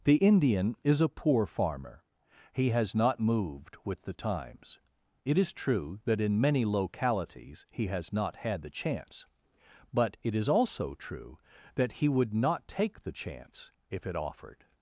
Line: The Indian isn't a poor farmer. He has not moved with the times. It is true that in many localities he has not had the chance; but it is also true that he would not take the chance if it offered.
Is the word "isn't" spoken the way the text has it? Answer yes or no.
no